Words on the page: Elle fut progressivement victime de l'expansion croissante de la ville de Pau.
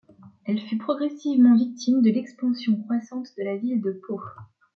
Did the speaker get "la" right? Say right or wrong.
right